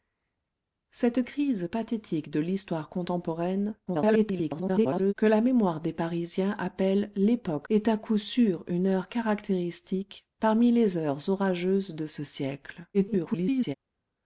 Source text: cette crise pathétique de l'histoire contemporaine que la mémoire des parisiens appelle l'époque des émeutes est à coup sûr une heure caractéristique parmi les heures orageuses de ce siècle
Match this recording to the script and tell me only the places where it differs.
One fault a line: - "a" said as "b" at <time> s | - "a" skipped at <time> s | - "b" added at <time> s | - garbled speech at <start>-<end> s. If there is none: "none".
- garbled speech at 3.9-5.1 s
- "des émeutes" skipped at 7.7 s
- garbled speech at 12.9-13.7 s